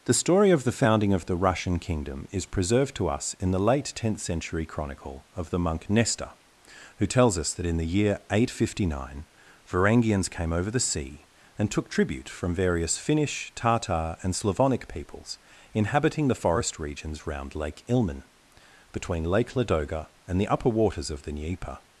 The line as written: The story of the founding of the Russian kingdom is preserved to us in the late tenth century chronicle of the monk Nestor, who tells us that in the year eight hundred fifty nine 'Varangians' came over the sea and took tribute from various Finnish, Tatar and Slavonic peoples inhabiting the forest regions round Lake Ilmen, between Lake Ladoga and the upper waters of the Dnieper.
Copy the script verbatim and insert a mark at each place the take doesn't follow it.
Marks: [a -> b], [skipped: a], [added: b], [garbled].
The story of the founding of the Russian kingdom is preserved to us in the late tenth century chronicle of the monk Nestor, who tells us that in the year eight hundred fifty nine 'Varangians' came over the sea and took tribute from various Finnish, Tatar and Slavonic peoples inhabiting the forest regions round Lake Ilmen, between Lake Ladoga and the upper waters of the Dnieper.